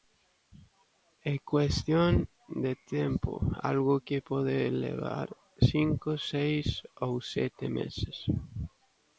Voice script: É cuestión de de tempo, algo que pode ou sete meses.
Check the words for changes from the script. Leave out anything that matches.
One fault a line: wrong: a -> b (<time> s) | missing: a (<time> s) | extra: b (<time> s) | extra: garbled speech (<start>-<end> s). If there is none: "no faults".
missing: de (2.7 s)
extra: levar cinco seis (4.8 s)